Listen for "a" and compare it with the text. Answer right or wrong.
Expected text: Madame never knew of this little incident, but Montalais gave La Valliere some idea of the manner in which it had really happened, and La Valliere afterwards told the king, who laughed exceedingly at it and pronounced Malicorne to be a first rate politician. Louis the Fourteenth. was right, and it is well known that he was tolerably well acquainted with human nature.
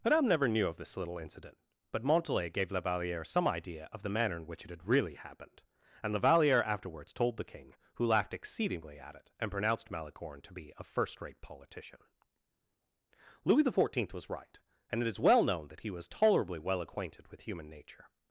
right